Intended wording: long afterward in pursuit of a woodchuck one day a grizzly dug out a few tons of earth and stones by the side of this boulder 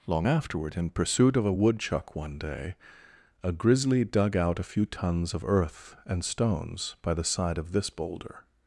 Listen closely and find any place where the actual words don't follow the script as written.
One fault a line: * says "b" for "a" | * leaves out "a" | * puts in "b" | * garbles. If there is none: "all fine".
all fine